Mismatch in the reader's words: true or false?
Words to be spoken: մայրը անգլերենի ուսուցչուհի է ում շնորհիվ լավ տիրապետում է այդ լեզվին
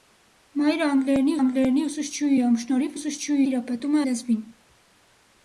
true